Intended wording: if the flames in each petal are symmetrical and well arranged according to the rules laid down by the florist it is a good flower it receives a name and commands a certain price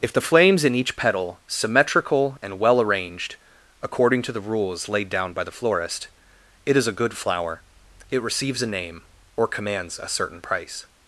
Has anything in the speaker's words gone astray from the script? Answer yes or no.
yes